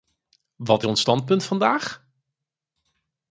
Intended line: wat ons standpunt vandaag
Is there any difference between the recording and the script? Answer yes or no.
no